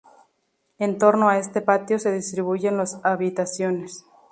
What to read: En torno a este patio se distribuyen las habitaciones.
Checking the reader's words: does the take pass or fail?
pass